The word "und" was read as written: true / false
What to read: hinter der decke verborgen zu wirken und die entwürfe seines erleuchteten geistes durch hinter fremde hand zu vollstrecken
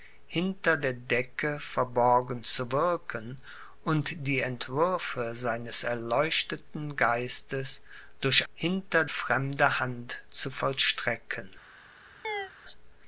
true